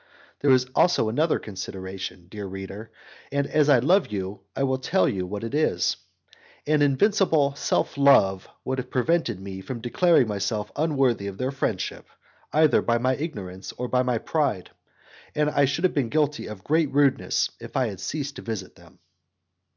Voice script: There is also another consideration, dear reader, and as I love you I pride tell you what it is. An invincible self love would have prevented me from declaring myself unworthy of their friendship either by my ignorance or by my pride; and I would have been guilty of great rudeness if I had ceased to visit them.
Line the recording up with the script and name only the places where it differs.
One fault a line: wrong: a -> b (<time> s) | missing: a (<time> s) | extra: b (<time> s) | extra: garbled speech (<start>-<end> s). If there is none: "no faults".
wrong: pride -> will (4.6 s)
wrong: would -> should (15.6 s)